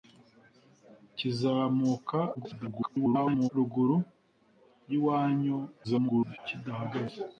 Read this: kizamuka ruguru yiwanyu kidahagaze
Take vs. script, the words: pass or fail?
fail